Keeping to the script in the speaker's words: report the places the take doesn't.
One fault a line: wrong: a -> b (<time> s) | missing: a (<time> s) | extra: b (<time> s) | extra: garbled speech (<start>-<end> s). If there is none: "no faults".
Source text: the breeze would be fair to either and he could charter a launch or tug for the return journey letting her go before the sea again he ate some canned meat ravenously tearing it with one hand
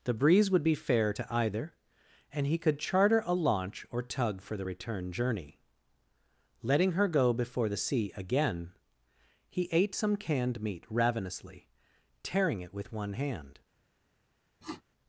no faults